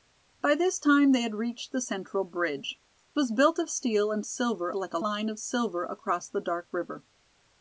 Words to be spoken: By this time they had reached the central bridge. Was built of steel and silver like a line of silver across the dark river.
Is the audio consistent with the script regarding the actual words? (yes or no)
yes